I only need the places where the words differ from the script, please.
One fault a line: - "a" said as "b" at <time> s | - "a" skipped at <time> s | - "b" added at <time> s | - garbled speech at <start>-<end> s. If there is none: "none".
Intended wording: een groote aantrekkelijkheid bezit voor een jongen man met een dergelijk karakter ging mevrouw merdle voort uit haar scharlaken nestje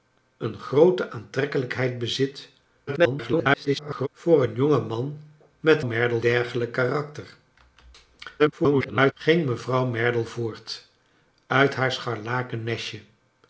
- garbled speech at 2.9-4.1 s
- "een" said as "merdle" at 5.8 s
- garbled speech at 8.4-9.1 s